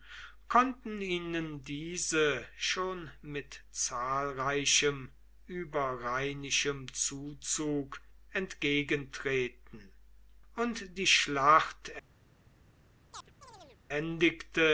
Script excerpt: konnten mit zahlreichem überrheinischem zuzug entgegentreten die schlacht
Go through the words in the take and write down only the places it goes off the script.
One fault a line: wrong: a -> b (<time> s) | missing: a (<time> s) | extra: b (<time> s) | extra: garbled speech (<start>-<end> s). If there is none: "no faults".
extra: ihnen diese schon (1.0 s)
extra: und (10.6 s)